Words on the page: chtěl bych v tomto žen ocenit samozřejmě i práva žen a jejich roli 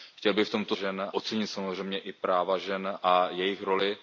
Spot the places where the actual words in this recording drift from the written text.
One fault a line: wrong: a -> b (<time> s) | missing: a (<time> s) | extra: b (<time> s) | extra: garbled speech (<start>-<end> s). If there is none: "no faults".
no faults